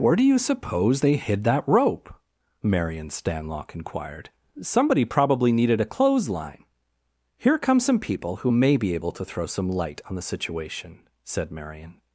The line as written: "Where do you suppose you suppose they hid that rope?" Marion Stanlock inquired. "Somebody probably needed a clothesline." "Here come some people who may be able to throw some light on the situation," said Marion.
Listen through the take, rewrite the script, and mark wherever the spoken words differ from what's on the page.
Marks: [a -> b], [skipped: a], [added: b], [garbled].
"Where do you suppose [skipped: you suppose] they hid that rope?" Marion Stanlock inquired. "Somebody probably needed a clothesline." "Here come some people who may be able to throw some light on the situation," said Marion.